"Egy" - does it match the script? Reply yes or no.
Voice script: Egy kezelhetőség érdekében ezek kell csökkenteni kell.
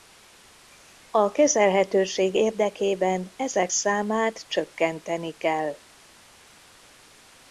no